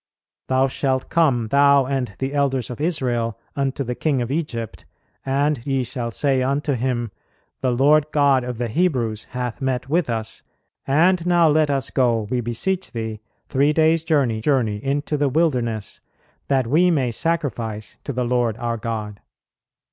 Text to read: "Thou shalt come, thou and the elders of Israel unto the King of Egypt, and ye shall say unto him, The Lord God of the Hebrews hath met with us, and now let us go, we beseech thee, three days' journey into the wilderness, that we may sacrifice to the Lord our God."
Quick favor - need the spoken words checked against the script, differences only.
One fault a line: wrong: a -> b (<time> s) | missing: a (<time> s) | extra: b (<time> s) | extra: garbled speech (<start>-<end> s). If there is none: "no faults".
extra: journey (14.4 s)